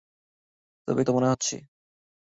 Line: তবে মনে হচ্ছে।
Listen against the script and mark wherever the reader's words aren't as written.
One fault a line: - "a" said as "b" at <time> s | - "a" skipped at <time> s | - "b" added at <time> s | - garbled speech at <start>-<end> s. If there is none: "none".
none